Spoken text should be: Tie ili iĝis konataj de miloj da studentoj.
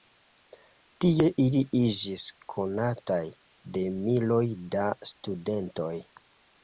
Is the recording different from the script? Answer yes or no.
no